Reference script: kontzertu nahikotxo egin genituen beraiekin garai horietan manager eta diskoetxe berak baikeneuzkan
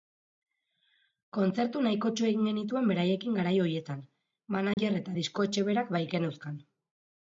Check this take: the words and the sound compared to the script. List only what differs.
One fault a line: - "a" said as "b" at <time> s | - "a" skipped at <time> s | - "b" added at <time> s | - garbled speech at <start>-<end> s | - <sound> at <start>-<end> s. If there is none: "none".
- dropout at 4.7-4.8 s